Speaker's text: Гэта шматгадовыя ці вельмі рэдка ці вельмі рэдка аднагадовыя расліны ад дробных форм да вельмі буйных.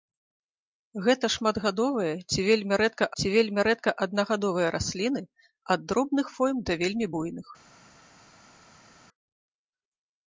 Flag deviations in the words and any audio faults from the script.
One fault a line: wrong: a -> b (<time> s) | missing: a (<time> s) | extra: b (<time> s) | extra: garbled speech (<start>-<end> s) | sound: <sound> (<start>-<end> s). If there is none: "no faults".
no faults